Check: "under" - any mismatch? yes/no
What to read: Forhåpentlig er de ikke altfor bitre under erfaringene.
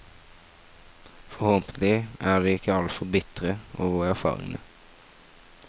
yes